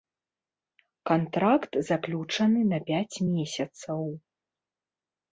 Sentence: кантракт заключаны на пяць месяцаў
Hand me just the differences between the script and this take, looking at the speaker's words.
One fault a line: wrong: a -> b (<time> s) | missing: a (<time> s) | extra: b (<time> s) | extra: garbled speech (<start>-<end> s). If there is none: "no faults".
no faults